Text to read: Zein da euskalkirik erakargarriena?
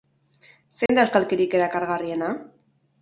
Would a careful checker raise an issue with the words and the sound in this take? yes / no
yes